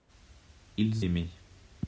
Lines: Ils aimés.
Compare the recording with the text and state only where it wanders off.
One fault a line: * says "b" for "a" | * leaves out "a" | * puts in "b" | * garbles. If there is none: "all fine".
all fine